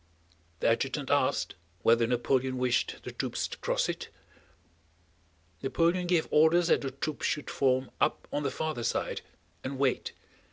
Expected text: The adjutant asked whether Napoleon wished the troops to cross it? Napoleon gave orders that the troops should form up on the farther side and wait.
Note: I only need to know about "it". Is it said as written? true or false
true